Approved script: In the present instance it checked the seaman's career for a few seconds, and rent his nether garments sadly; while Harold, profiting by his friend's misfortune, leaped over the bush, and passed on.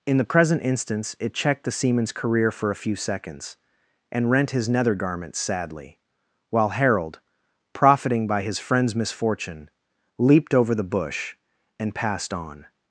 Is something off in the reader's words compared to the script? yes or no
no